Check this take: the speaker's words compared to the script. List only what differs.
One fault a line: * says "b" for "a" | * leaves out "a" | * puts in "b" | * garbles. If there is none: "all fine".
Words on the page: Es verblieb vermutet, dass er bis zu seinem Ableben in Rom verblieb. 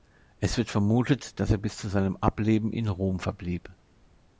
* says "wird" for "verblieb"